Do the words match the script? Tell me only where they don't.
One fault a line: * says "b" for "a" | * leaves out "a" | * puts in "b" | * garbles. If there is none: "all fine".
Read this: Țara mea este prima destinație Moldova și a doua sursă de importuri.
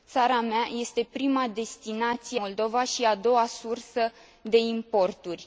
all fine